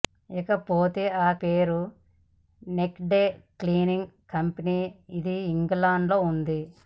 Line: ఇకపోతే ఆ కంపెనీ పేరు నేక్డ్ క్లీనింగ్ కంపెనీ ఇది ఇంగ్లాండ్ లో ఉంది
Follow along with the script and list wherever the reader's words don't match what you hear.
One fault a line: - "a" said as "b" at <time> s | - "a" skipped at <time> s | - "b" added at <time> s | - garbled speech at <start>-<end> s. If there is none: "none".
- "కంపెనీ" skipped at 1.3 s